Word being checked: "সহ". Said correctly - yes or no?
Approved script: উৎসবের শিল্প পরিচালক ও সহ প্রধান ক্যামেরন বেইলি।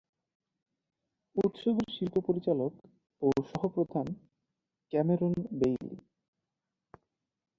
yes